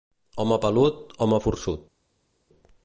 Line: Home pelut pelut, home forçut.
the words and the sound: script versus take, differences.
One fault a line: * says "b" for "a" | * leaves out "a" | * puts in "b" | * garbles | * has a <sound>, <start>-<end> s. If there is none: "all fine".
* leaves out "pelut"